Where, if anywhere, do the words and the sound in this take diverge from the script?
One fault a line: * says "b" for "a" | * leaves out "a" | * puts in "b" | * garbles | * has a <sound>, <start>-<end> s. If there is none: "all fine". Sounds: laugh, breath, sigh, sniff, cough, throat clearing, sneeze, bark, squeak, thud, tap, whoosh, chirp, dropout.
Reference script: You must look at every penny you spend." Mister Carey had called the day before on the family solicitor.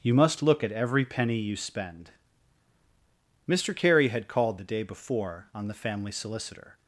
all fine